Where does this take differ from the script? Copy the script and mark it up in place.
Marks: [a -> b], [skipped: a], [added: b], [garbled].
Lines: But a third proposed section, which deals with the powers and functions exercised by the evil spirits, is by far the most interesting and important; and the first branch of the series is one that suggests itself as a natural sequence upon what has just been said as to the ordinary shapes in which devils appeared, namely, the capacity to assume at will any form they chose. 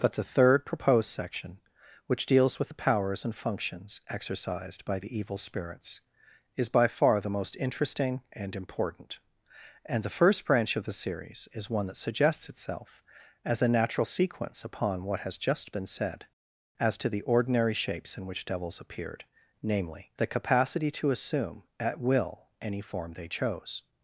But [a -> the] third proposed section, which deals with the powers and functions exercised by the evil spirits, is by far the most interesting and important; and the first branch of the series is one that suggests itself as a natural sequence upon what has just been said as to the ordinary shapes in which devils appeared, namely, the capacity to assume at will any form they chose.